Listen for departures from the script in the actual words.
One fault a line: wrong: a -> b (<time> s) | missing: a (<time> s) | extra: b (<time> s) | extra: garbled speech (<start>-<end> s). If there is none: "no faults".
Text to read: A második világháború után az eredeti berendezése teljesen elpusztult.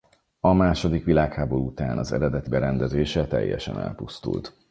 no faults